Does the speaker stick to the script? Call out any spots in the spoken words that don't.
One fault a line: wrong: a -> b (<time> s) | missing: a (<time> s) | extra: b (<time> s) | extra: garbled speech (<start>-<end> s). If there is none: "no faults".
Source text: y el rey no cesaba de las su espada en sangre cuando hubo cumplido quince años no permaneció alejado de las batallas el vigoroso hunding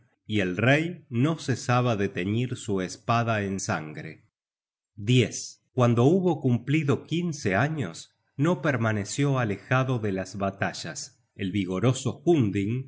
wrong: las -> teñir (2.1 s)